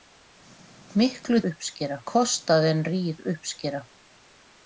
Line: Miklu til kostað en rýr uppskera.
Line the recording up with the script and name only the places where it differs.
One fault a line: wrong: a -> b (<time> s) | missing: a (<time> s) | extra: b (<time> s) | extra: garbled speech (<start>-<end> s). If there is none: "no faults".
wrong: til -> uppskera (1.5 s)